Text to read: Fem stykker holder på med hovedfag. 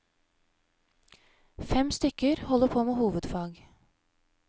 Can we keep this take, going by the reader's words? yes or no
yes